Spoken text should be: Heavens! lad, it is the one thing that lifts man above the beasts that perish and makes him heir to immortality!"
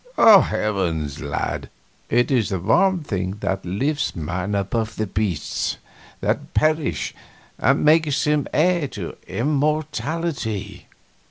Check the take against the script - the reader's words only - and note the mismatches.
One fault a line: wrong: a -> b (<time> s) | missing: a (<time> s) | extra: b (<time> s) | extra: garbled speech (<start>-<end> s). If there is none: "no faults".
no faults